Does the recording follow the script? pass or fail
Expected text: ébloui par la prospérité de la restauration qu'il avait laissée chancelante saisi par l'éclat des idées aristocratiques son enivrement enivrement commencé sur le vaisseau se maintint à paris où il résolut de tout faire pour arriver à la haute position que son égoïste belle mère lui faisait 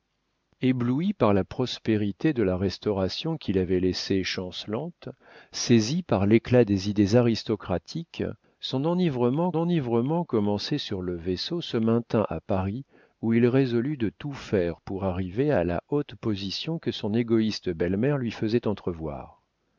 pass